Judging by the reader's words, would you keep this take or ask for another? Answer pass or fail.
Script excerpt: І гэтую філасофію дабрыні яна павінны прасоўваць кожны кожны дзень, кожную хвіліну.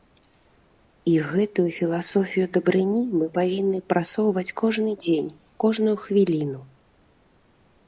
fail